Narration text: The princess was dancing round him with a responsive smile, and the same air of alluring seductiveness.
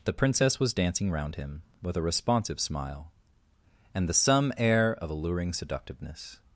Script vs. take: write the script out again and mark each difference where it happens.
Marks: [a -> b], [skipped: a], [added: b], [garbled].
The princess was dancing round him with a responsive smile, and the [same -> some] air of alluring seductiveness.